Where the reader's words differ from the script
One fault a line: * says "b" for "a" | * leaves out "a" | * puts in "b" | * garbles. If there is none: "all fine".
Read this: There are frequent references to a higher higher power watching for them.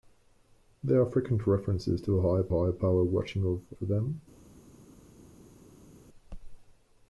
all fine